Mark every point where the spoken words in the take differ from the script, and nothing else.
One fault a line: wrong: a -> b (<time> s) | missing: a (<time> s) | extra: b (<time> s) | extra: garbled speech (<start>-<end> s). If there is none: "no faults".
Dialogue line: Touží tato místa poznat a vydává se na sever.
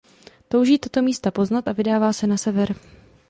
no faults